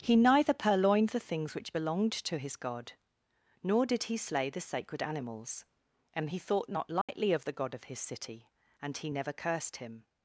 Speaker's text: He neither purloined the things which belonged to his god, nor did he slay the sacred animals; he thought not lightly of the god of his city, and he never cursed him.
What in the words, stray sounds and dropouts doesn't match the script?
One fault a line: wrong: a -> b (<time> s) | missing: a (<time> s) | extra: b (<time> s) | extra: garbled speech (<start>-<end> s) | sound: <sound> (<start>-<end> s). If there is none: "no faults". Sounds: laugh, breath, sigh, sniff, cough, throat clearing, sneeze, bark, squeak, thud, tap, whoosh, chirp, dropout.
extra: and (6.1 s)
sound: dropout (7.0-7.1 s)